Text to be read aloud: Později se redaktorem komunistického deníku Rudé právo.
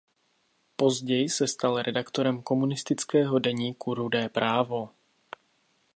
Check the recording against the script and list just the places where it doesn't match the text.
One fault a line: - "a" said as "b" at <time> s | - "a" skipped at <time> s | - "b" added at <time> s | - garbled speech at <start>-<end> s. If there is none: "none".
- "stal" added at 1.5 s